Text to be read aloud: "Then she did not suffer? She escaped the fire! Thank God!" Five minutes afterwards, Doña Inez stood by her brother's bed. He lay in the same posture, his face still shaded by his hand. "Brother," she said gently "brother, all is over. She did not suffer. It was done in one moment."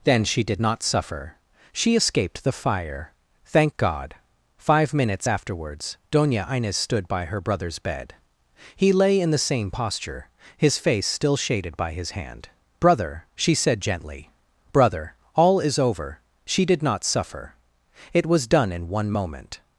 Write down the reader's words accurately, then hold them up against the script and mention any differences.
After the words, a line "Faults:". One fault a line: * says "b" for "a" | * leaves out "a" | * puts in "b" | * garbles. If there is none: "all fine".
"Then she did not suffer? She escaped the fire! Thank God!" Five minutes afterwards, Doña Inez stood by her brother's bed. He lay in the same posture, his face still shaded by his hand. "Brother," she said gently "brother, all is over. She did not suffer. It was done in one moment."
Faults:
all fine